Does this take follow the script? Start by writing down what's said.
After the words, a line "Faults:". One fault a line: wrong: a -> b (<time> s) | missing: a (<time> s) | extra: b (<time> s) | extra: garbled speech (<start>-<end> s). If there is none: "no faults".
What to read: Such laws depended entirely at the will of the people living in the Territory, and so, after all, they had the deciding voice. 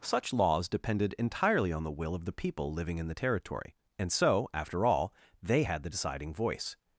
Such laws depended entirely on the will of the people living in the Territory, and so, after all, they had the deciding voice.
Faults:
wrong: at -> on (1.7 s)